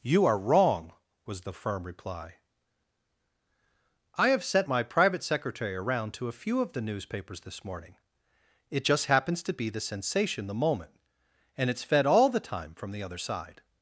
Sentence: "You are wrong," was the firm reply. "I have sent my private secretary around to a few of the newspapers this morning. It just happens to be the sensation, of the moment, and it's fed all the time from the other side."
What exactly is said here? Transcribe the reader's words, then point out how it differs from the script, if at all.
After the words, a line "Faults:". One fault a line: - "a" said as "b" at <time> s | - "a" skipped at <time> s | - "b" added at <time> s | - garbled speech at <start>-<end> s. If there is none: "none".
"You are wrong," was the firm reply. "I have sent my private secretary around to a few of the newspapers this morning. It just happens to be the sensation, the moment, and it's fed all the time from the other side."
Faults:
- "of" skipped at 10.5 s